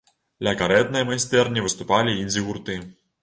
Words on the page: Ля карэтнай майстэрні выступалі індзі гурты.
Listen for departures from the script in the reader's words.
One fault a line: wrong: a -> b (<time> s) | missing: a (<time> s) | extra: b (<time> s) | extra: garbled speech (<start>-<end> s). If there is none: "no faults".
no faults